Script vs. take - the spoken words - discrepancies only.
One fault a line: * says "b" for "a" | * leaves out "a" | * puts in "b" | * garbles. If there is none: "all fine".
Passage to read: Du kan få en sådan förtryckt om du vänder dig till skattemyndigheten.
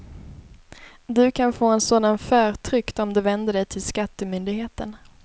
all fine